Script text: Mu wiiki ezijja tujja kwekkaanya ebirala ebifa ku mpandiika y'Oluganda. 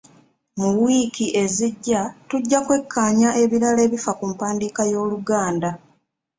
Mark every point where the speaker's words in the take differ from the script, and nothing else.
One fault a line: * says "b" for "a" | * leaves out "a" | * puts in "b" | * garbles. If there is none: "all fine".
all fine